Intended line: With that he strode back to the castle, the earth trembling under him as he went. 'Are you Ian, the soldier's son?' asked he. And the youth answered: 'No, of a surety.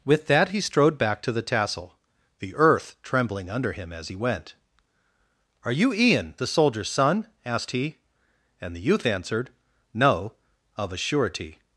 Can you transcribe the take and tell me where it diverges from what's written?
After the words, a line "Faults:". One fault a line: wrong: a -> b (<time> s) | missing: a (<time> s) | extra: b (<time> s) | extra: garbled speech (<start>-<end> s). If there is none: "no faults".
With that he strode back to the tassel, the earth trembling under him as he went. 'Are you Ian, the soldier's son?' asked he. And the youth answered: 'No, of a surety.
Faults:
wrong: castle -> tassel (1.4 s)